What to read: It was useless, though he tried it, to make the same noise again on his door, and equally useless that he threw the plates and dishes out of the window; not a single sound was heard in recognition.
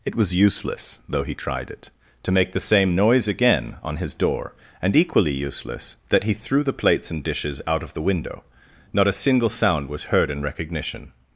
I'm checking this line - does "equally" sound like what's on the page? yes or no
yes